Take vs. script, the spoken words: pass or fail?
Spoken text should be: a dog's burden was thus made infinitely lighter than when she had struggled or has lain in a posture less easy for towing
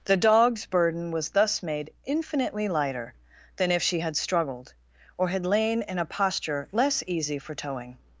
fail